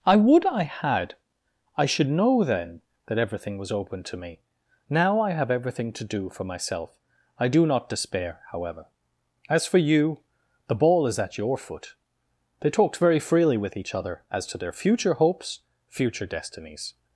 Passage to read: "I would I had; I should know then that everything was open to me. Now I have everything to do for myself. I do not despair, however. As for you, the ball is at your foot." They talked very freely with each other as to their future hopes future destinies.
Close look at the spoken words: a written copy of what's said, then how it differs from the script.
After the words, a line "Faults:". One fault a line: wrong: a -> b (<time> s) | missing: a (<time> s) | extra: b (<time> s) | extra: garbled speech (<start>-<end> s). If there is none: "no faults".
"I would I had; I should know then that everything was open to me. Now I have everything to do for myself. I do not despair, however. As for you, the ball is at your foot." They talked very freely with each other as to their future hopes future destinies.
Faults:
no faults